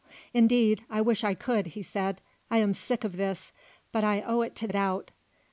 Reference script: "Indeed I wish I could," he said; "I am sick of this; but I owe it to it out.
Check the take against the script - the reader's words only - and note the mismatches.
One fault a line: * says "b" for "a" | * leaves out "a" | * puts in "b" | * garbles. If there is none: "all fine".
all fine